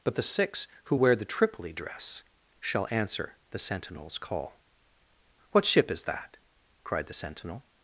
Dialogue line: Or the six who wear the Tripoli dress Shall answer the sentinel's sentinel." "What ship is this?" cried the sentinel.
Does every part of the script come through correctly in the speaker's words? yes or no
no